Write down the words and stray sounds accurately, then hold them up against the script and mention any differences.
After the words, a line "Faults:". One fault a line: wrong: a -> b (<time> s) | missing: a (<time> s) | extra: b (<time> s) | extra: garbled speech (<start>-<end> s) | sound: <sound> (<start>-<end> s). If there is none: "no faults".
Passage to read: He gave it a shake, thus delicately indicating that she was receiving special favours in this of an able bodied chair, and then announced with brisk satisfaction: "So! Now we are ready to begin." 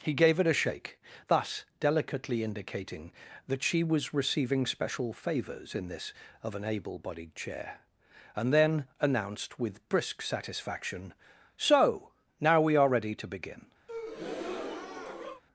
He gave it a shake, thus delicately indicating that she was receiving special favours in this of an able bodied chair, and then announced with brisk satisfaction: "So! Now we are ready to begin."
Faults:
sound: breath (13.9-15.4 s)